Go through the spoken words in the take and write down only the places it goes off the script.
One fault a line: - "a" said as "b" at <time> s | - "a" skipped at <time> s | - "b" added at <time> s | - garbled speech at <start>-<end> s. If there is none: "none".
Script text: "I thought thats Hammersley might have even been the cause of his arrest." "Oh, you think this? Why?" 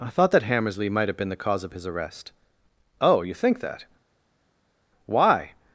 - "thats" said as "that" at 0.3 s
- "even" skipped at 1.2 s
- "this" said as "that" at 3.6 s